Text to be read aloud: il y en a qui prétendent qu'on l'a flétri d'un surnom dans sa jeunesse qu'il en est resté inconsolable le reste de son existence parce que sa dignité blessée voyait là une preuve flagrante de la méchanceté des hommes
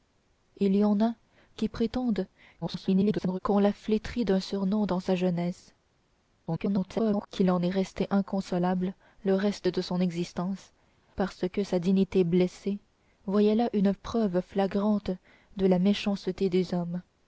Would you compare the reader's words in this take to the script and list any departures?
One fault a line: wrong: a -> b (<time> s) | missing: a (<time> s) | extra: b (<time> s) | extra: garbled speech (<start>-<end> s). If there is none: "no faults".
extra: garbled speech (2.6-3.4 s)
extra: garbled speech (6.5-7.3 s)